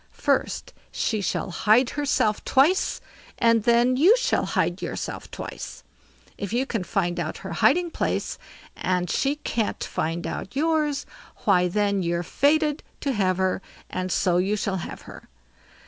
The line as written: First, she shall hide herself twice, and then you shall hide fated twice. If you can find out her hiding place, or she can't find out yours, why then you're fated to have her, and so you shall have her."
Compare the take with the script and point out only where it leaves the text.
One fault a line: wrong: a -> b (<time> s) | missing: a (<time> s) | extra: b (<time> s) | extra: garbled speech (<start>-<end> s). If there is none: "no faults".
wrong: fated -> yourself (4.8 s)
wrong: or -> and (8.8 s)